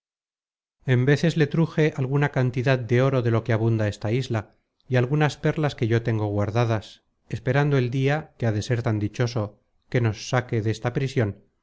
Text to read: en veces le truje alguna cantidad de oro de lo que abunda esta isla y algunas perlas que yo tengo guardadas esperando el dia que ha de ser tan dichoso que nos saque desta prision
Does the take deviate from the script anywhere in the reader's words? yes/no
no